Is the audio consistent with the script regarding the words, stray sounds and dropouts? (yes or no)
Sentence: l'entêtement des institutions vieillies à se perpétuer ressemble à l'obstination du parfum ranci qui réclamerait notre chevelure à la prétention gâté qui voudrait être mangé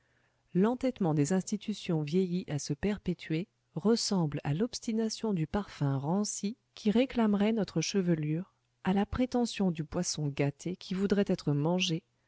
no